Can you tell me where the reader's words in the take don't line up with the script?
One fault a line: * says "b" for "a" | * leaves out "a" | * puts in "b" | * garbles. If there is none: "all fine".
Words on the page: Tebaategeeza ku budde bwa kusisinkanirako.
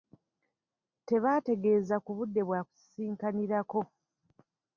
all fine